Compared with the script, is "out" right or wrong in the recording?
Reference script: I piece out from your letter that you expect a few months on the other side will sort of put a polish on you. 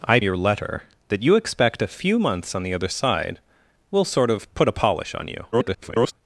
wrong